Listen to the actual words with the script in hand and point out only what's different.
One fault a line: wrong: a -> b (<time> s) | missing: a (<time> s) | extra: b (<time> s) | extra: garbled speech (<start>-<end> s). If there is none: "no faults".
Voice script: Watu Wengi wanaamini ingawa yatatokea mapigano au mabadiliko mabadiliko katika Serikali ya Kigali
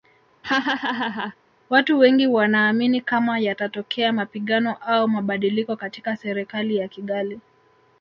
wrong: ingawa -> kama (3.0 s)
missing: mabadiliko (5.7 s)